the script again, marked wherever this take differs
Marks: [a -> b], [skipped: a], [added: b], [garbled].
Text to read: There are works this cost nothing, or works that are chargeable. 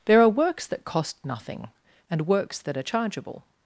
There are works [this -> that] cost nothing, [or -> and] works that are chargeable.